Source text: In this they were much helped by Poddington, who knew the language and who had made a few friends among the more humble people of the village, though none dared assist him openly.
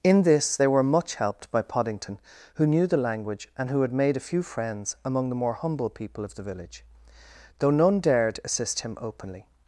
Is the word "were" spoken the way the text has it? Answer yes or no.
yes